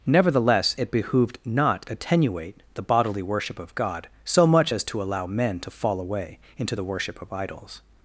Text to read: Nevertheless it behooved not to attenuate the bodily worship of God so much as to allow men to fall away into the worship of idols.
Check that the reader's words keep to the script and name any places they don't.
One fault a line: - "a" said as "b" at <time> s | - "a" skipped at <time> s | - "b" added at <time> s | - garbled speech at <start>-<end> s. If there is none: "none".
- "to" skipped at 1.8 s